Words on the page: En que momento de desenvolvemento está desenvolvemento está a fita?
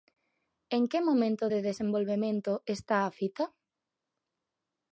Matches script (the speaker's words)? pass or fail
fail